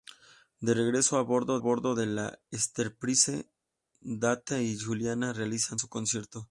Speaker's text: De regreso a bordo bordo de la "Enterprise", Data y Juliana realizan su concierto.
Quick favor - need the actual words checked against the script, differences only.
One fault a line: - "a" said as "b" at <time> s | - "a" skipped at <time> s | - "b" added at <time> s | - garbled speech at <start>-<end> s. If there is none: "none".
none